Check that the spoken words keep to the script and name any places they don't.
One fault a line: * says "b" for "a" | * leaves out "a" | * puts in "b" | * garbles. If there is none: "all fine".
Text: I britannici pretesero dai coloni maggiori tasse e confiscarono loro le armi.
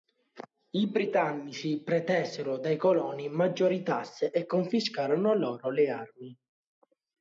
all fine